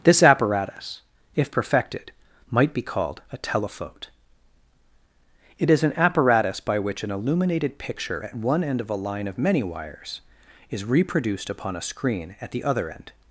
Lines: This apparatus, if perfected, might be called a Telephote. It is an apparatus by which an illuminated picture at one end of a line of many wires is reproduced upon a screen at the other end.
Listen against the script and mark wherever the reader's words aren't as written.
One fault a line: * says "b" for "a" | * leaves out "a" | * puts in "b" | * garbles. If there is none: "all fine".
all fine